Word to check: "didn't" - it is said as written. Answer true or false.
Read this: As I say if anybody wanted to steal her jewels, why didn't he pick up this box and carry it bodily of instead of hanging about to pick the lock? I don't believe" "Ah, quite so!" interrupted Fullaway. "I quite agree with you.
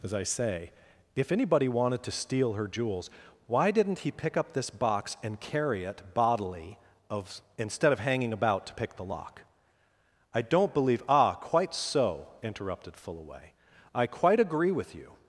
true